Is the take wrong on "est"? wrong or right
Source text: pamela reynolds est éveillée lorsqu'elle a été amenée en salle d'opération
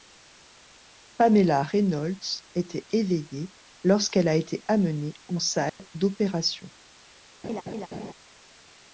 wrong